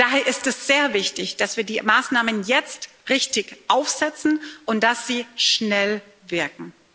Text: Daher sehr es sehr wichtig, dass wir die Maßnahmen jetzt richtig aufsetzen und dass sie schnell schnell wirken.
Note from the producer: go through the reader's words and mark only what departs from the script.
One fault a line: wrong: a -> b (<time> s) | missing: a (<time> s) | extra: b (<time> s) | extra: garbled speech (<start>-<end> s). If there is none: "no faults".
wrong: sehr -> ist (0.2 s)
missing: schnell (6.0 s)